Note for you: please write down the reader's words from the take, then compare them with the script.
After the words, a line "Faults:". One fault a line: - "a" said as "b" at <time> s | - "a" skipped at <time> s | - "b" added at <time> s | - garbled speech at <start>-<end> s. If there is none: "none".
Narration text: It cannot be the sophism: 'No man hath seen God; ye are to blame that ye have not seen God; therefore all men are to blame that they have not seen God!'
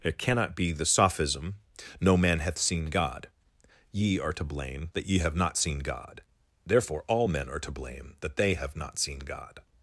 It cannot be the sophism: 'No man hath seen God; ye are to blame that ye have not seen God; therefore all men are to blame that they have not seen God!'
Faults:
none